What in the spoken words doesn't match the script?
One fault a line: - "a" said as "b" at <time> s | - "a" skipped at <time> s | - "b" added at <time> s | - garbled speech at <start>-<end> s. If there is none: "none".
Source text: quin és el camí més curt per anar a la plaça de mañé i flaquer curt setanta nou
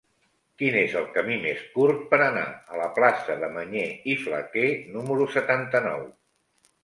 - "curt" said as "número" at 5.0 s